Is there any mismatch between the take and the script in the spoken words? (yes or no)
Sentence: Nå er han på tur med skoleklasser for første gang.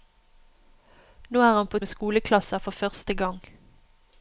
yes